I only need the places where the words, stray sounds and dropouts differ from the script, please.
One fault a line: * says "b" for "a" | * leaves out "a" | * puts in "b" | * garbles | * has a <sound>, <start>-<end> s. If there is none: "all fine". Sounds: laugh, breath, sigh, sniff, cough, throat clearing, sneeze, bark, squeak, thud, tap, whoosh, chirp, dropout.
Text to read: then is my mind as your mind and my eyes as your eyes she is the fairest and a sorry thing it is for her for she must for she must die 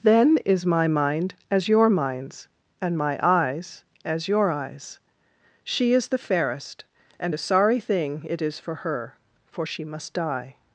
* says "minds" for "mind"
* leaves out "for she must"